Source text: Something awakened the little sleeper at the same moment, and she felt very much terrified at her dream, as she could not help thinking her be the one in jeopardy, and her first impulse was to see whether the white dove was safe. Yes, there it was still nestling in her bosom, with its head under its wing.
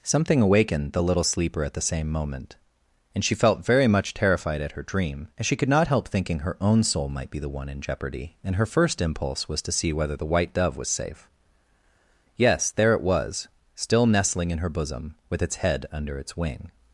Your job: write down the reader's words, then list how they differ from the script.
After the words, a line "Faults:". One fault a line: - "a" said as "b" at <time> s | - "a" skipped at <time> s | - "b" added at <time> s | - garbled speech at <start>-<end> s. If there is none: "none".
Something awakened the little sleeper at the same moment, and she felt very much terrified at her dream, as she could not help thinking her own soul might be the one in jeopardy, and her first impulse was to see whether the white dove was safe. Yes, there it was still nestling in her bosom, with its head under its wing.
Faults:
- "own soul might" added at 6.6 s